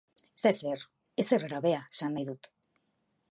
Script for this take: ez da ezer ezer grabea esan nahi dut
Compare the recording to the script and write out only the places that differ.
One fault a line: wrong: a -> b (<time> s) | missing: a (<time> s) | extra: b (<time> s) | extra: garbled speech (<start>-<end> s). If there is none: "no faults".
no faults